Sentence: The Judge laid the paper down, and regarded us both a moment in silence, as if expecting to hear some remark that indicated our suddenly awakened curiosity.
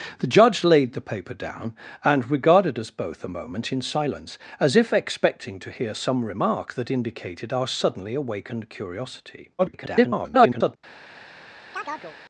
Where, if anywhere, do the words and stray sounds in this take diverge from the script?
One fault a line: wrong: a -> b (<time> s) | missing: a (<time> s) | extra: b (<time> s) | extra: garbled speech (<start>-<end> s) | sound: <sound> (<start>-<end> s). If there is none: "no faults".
extra: garbled speech (9.6-10.8 s)
sound: chirp (11.7-12.2 s)